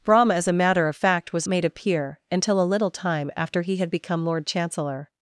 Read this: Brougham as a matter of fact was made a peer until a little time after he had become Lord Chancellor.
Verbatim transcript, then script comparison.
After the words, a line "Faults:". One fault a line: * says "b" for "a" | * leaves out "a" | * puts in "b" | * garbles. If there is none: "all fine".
Brougham as a matter of fact was made a peer until a little time after he had become Lord Chancellor.
Faults:
all fine